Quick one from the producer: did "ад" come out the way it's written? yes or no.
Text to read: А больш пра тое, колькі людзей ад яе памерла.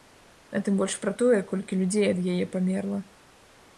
yes